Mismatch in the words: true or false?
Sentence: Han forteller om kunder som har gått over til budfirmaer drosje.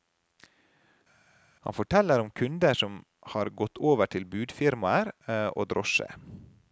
true